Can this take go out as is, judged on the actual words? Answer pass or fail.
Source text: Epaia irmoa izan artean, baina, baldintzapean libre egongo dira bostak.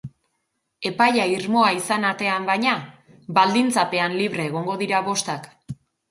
pass